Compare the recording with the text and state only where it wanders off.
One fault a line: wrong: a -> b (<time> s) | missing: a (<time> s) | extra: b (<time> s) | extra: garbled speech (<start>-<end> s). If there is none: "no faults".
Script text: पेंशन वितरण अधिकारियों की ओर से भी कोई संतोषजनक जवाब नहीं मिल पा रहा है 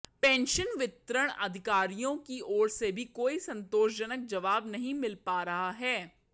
no faults